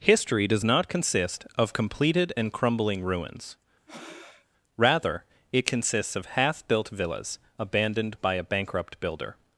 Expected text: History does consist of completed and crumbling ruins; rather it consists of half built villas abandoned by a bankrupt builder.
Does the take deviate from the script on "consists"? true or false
false